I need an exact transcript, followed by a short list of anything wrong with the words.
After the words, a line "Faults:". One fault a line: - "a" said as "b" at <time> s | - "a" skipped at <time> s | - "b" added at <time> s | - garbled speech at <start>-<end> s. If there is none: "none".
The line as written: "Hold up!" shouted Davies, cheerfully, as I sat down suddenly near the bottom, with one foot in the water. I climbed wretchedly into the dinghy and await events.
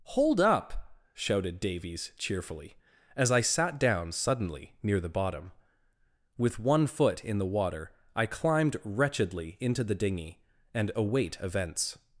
"Hold up!" shouted Davies, cheerfully, as I sat down suddenly near the bottom, with one foot in the water. I climbed wretchedly into the dinghy and await events.
Faults:
none